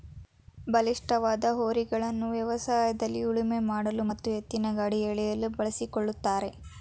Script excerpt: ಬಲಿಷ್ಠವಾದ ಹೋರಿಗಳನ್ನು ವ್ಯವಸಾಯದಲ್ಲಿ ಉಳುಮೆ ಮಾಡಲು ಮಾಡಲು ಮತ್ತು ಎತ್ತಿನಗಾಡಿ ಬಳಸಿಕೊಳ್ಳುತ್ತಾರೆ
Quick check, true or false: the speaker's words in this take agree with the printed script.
false